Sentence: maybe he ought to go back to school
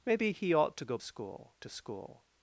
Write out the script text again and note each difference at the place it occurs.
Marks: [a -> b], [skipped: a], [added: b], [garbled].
maybe he ought to go [back -> school] to school